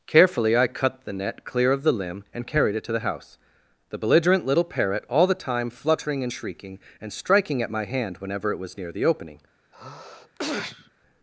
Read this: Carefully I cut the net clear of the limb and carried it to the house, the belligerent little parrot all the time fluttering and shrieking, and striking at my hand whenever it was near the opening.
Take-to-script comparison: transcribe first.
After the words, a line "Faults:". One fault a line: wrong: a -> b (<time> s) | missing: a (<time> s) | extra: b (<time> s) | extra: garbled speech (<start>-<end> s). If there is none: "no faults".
Carefully I cut the net clear of the limb and carried it to the house, the belligerent little parrot all the time fluttering and shrieking, and striking at my hand whenever it was near the opening.
Faults:
no faults